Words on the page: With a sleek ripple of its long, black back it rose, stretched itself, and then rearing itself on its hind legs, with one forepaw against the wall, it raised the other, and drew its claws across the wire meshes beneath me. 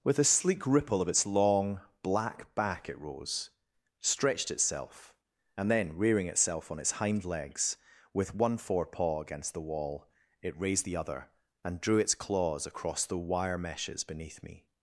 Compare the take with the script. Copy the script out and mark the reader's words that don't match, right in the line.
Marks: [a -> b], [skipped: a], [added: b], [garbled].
With a sleek ripple of its long, black back it rose, stretched itself, and then rearing itself on its hind legs, with one forepaw against the wall, it raised the other, and drew its claws across the wire meshes beneath me.